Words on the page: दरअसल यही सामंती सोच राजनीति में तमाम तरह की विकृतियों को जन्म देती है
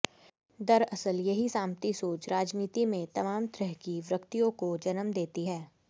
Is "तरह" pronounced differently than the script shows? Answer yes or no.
no